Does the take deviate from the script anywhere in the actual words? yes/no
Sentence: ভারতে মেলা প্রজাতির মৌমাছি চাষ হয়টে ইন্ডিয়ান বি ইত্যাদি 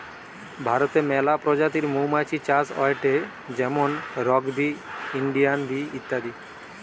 yes